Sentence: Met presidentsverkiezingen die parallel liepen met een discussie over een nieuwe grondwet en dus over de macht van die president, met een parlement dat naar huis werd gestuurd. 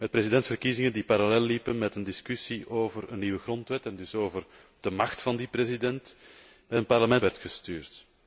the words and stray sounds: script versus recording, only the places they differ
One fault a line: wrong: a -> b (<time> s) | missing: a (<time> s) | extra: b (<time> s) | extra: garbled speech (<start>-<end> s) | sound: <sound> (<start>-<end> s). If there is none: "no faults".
missing: dat naar huis (7.2 s)